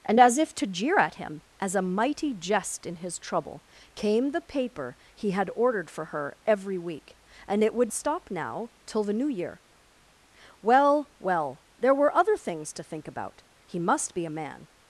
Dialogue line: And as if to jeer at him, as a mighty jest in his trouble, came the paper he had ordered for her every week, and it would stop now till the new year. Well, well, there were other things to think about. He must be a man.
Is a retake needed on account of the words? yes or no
no